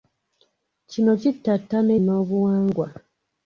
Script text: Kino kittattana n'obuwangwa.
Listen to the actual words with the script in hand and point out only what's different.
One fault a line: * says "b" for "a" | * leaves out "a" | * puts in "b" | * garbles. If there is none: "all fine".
all fine